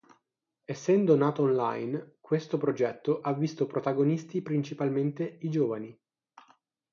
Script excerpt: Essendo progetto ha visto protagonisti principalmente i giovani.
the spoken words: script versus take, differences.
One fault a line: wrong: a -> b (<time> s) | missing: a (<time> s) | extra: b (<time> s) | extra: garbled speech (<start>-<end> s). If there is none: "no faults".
extra: nato online questo (1.1 s)